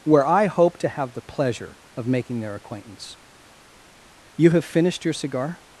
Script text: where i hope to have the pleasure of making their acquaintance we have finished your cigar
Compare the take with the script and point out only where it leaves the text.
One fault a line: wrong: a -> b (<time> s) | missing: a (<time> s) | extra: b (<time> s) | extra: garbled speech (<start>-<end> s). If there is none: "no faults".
wrong: we -> you (4.3 s)